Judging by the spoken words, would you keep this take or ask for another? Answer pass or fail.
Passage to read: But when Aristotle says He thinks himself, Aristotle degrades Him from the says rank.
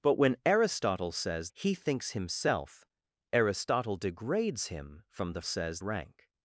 pass